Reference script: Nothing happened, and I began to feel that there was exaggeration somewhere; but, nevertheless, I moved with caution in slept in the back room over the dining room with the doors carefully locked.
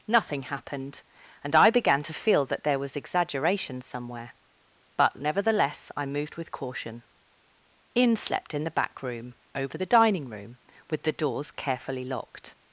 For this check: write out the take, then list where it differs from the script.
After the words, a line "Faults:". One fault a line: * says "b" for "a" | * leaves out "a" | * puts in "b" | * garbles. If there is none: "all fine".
Nothing happened, and I began to feel that there was exaggeration somewhere; but, nevertheless, I moved with caution in slept in the back room over the dining room with the doors carefully locked.
Faults:
all fine